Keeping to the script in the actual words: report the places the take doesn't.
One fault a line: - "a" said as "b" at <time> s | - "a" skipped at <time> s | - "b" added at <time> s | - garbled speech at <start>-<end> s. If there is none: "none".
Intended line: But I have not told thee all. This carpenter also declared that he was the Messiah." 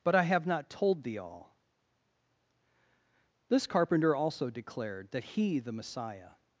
- "was" skipped at 5.6 s